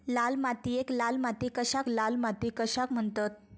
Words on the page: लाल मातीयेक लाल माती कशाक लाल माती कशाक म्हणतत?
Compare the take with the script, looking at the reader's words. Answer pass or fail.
pass